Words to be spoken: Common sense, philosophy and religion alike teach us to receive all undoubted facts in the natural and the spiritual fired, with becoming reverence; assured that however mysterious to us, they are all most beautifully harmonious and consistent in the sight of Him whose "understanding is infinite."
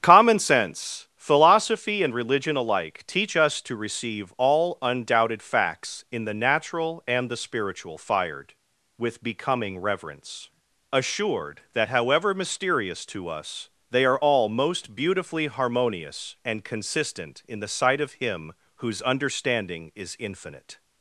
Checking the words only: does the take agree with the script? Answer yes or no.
yes